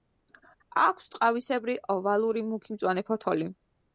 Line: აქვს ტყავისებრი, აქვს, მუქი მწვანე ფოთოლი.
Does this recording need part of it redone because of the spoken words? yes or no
yes